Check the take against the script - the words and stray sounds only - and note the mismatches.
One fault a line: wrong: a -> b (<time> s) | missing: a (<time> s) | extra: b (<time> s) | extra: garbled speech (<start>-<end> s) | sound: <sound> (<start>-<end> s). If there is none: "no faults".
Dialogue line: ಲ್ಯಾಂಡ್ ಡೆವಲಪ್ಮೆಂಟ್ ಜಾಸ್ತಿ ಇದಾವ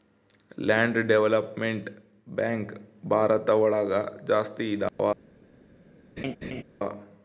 extra: ಬ್ಯಾಂಕ್ ಭಾರತ ಒಳಗ (2.3 s)
sound: dropout (4.9-5.0 s)
sound: laugh (6.2-6.6 s)